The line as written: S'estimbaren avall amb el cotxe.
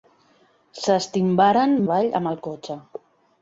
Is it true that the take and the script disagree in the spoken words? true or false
false